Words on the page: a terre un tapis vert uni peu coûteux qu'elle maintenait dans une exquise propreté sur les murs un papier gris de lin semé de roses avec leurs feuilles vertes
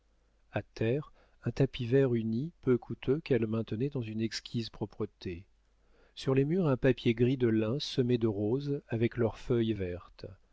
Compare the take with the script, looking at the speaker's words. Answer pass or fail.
pass